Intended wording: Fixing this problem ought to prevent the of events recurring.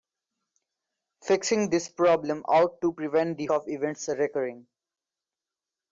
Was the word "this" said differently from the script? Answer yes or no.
no